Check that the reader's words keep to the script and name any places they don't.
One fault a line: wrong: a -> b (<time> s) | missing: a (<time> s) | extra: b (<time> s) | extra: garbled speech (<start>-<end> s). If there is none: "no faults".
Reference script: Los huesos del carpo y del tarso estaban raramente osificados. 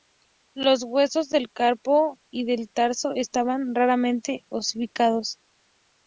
no faults